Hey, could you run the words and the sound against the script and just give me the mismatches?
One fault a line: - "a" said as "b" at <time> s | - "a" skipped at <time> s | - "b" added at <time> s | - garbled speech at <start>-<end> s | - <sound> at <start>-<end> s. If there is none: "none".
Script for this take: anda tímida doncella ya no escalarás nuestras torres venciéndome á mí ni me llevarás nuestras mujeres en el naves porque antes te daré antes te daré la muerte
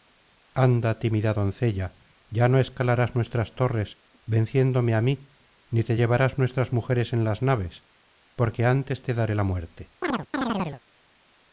- "me" said as "te" at 5.9 s
- "el" said as "las" at 7.2 s
- "antes te daré" skipped at 9.3 s
- chirp at 10.0-10.8 s